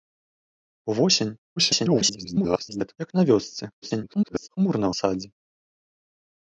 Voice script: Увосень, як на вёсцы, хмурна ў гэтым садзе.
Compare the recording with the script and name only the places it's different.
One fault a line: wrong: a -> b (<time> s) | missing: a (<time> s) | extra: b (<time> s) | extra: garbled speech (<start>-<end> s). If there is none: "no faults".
extra: garbled speech (1.6-3.0 s)
extra: garbled speech (3.8-4.5 s)
missing: гэтым (4.9 s)